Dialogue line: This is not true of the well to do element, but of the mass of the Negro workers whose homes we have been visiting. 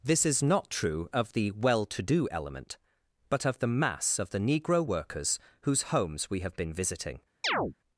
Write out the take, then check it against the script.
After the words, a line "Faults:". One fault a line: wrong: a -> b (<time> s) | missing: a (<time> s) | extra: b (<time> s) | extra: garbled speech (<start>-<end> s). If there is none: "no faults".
This is not true of the well to do element, but of the mass of the Negro workers whose homes we have been visiting.
Faults:
no faults